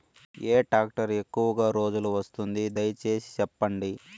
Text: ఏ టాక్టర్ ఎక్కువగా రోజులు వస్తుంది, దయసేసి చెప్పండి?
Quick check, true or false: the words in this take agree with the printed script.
true